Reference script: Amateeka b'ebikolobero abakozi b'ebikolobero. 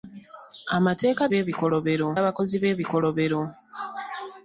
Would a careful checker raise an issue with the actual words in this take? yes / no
no